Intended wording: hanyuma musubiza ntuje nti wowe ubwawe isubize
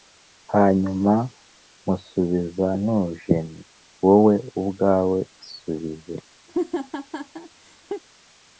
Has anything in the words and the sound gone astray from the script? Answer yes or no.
yes